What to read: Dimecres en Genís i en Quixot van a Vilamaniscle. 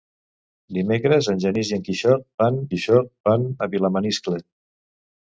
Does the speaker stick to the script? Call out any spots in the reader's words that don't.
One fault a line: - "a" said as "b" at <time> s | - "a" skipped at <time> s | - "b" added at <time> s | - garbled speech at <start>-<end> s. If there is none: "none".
- "Quixot van" added at 2.7 s